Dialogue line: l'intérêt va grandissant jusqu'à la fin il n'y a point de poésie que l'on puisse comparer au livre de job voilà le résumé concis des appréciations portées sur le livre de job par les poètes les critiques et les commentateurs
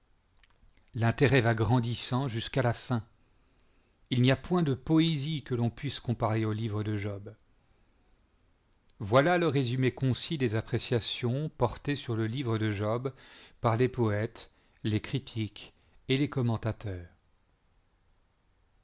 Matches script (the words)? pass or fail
pass